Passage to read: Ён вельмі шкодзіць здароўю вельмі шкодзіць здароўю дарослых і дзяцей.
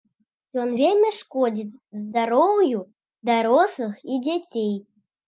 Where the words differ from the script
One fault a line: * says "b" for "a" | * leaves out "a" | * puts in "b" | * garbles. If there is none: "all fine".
* leaves out "вельмі шкодзіць здароўю"